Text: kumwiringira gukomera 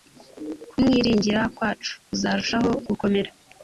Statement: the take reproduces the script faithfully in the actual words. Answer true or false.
false